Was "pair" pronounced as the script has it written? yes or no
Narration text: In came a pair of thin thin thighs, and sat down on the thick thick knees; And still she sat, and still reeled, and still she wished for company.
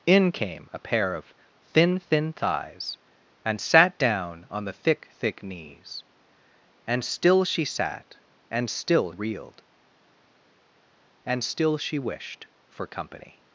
yes